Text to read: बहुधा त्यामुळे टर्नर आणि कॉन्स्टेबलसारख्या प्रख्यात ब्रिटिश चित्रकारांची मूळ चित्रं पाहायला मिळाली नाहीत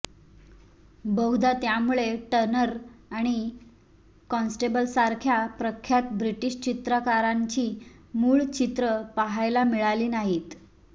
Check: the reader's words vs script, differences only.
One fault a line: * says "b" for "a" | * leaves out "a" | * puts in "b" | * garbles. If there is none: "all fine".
all fine